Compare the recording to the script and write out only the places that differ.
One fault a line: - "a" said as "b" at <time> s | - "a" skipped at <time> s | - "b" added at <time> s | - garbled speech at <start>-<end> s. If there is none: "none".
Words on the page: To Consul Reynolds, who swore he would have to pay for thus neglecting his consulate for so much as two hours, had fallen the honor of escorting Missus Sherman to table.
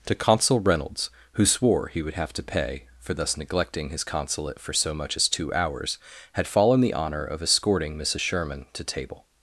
none